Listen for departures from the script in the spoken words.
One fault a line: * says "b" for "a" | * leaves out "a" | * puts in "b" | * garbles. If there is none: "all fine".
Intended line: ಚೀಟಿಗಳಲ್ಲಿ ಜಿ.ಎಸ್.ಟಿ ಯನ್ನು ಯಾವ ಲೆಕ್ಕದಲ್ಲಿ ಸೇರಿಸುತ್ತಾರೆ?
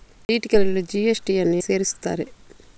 * leaves out "ಯಾವ ಲೆಕ್ಕದಲ್ಲಿ"